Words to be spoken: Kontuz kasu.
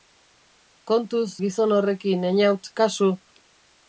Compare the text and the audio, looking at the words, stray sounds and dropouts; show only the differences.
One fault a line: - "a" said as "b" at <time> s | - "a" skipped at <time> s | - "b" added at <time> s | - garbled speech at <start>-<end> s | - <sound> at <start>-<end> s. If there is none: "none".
- "gizon horrekin Eñaut" added at 1.4 s